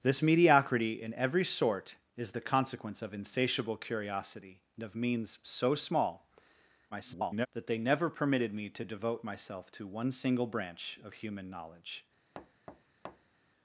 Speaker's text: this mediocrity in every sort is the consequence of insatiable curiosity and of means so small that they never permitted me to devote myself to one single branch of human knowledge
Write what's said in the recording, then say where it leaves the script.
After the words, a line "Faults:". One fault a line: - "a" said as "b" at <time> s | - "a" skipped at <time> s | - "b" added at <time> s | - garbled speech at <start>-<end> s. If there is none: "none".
this mediocrity in every sort is the consequence of insatiable curiosity and of means so small [garbled] that they never permitted me to devote myself to one single branch of human knowledge
Faults:
- garbled speech at 6.9-7.5 s